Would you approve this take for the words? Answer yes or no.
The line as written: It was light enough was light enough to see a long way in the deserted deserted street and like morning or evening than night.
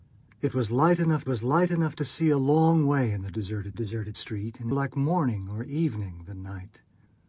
yes